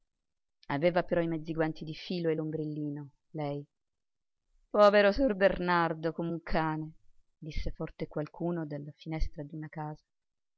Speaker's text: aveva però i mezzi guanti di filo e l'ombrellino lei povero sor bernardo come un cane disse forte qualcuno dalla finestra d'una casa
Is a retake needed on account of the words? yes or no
no